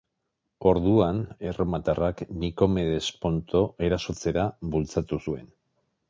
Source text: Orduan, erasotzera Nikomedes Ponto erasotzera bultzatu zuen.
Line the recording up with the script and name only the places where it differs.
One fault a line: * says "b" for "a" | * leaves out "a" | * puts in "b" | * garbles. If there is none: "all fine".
* says "erromatarrak" for "erasotzera"